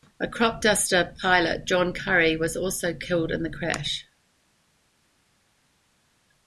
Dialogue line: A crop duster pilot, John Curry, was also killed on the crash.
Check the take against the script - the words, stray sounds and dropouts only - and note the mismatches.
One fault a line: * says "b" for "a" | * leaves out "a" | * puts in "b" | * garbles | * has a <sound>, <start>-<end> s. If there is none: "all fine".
* says "in" for "on"